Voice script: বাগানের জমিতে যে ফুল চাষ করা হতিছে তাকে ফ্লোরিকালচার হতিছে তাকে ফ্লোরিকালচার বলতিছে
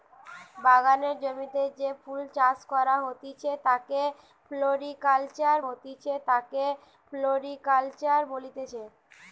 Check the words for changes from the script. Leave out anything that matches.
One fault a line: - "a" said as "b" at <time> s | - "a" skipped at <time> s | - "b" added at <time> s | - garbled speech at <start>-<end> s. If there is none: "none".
none